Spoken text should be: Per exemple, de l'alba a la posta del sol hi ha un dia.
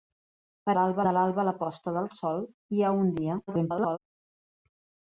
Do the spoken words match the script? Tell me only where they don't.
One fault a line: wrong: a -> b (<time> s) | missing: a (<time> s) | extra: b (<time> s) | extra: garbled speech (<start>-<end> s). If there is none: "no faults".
wrong: exemple -> l'alba (0.8 s)
extra: garbled speech (3.5-4.0 s)